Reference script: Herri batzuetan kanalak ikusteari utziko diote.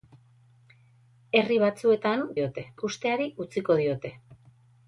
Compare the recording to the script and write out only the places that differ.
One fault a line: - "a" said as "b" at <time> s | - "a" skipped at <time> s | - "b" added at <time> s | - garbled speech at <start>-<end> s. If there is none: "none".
- "kanalak" said as "diote" at 2.4 s